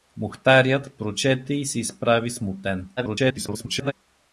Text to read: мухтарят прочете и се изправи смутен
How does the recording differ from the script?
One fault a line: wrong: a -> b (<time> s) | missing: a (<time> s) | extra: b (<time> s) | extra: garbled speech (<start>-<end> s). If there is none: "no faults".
extra: garbled speech (3.0-3.9 s)